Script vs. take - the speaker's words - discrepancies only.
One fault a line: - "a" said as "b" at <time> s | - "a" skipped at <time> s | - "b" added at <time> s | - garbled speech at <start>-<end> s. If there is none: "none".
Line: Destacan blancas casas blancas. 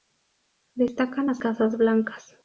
- "blancas" said as "las" at 1.2 s